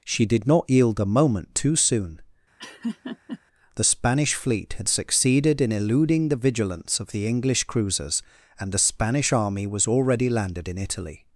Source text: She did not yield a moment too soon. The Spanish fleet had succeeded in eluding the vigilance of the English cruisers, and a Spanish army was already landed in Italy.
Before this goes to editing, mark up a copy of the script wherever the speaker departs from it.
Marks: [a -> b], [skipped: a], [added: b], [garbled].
She did not yield a moment too soon. The Spanish fleet had succeeded in eluding the vigilance of the English cruisers, and [a -> the] Spanish army was already landed in Italy.